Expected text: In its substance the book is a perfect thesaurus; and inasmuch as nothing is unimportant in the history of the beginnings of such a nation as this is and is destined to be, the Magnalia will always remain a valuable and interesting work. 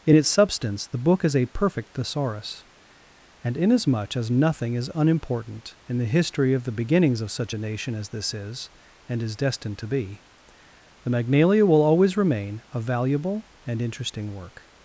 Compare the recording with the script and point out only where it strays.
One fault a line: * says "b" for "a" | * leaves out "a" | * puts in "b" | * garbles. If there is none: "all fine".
all fine